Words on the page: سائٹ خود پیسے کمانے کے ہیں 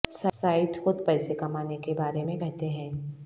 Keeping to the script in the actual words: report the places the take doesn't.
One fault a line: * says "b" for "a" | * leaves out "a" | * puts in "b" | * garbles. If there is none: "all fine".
* puts in "بارے میں کہتے"